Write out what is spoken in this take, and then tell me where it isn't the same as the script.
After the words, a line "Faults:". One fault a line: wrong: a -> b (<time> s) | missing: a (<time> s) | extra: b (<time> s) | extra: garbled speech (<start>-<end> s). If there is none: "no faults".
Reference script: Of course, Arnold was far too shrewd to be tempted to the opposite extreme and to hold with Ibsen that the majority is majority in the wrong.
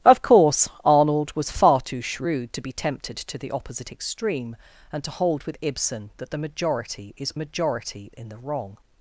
Of course, Arnold was far too shrewd to be tempted to the opposite extreme and to hold with Ibsen that the majority is majority in the wrong.
Faults:
no faults